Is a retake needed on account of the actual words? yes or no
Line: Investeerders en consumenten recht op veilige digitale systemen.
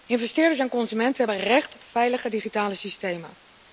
yes